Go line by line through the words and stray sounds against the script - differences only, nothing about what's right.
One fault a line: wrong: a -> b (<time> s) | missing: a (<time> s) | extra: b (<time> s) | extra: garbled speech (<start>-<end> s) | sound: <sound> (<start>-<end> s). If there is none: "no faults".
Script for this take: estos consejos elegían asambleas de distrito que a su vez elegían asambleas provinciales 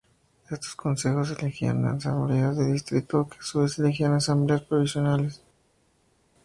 no faults